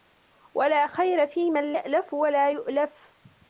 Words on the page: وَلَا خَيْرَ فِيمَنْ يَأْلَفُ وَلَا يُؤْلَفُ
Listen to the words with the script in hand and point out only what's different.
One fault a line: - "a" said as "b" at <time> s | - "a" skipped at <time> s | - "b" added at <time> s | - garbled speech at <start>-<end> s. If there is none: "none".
none